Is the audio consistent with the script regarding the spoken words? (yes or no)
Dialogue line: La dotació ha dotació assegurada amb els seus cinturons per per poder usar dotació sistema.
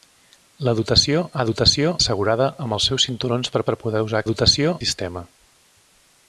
yes